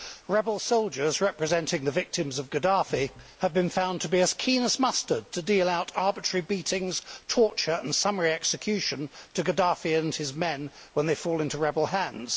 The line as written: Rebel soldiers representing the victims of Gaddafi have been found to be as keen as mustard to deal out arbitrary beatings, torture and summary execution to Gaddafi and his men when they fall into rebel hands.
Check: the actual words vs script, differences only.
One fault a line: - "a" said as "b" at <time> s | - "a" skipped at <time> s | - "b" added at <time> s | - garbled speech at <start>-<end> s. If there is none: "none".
none